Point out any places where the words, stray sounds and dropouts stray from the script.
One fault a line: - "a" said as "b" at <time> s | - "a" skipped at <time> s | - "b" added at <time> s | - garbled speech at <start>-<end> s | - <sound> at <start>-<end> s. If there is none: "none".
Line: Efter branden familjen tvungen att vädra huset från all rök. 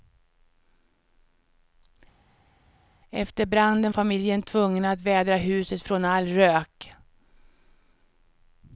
none